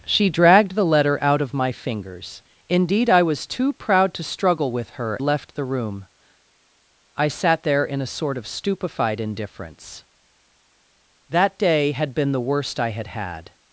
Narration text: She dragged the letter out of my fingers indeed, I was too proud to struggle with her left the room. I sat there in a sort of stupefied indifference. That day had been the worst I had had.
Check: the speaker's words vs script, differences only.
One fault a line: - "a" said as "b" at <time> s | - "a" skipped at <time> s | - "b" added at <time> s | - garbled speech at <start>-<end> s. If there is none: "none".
none